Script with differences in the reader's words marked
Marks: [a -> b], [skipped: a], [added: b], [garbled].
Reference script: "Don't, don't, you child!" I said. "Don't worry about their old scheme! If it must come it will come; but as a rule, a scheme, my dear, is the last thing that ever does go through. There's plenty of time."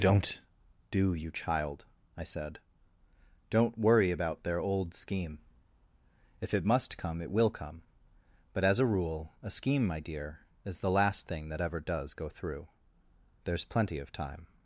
"Don't, [don't, -> do] you child!" I said. "Don't worry about their old scheme! If it must come it will come; but as a rule, a scheme, my dear, is the last thing that ever does go through. There's plenty of time."